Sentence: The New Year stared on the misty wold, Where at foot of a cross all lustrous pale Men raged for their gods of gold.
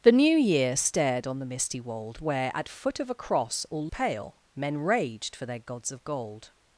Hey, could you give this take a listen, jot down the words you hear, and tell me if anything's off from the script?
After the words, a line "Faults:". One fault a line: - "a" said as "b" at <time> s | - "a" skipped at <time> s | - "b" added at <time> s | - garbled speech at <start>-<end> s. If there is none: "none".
The New Year stared on the misty wold, Where at foot of a cross all pale Men raged for their gods of gold.
Faults:
- "lustrous" skipped at 3.9 s